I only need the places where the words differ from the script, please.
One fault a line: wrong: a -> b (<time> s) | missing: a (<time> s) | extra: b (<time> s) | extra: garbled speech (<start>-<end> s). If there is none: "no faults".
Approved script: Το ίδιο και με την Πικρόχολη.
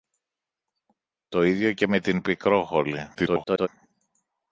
extra: garbled speech (3.1-3.7 s)